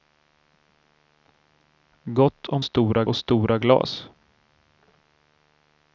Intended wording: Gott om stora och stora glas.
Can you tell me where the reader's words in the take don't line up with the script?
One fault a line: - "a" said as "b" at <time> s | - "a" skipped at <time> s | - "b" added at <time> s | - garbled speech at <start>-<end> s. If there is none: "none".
none